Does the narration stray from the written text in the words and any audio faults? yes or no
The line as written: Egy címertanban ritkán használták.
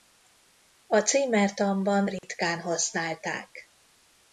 yes